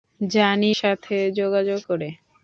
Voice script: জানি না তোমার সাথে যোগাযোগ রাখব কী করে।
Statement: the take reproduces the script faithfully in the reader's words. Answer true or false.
false